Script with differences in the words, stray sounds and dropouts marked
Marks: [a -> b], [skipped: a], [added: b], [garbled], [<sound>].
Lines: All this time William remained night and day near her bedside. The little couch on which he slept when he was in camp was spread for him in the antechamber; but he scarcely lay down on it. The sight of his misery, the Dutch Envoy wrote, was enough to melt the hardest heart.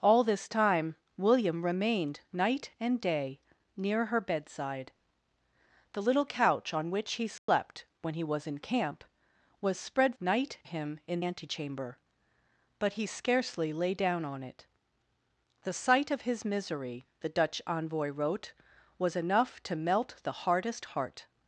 All this time William remained night and day near her bedside. The little couch on which he slept [dropout] when he was in camp was spread [for -> night] him in [skipped: the] antechamber; but he scarcely lay down on it. The sight of his misery, the Dutch Envoy wrote, was enough to melt the hardest heart.